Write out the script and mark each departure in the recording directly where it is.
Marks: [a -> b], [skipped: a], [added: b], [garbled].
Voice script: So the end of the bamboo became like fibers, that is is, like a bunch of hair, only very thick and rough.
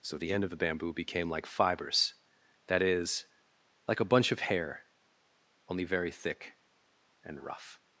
So the end of the bamboo became like fibers, that is [skipped: is,] like a bunch of hair, only very thick and rough.